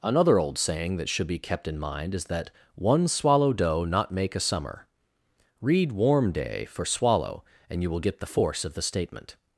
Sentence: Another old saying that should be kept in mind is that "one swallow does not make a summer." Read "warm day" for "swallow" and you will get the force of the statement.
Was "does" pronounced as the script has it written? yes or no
no